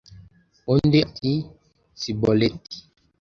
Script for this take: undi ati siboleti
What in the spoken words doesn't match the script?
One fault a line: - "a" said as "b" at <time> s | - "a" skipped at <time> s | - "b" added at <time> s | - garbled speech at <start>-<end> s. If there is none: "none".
none